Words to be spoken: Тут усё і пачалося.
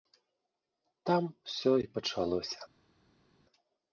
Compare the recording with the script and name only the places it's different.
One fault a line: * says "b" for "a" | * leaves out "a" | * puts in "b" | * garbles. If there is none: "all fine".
* says "Там" for "Тут"